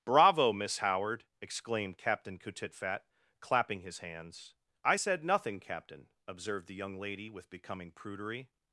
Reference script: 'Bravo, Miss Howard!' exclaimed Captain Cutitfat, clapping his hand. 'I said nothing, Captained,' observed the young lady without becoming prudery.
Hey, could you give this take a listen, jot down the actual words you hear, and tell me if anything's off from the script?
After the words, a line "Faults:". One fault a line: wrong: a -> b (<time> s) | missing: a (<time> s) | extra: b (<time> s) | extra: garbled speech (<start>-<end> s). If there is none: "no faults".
'Bravo, Miss Howard!' exclaimed Captain Cutitfat, clapping his hands. 'I said nothing, Captain,' observed the young lady with becoming prudery.
Faults:
wrong: hand -> hands (4.0 s)
wrong: Captained -> Captain (5.6 s)
wrong: without -> with (7.3 s)